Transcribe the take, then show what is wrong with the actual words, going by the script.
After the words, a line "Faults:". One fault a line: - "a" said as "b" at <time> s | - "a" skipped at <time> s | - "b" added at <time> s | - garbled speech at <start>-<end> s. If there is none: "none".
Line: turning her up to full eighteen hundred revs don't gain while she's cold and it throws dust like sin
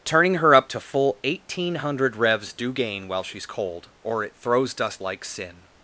turning her up to full eighteen hundred revs do gain while she's cold or it throws dust like sin
Faults:
- "don't" said as "do" at 2.5 s
- "and" said as "or" at 4.0 s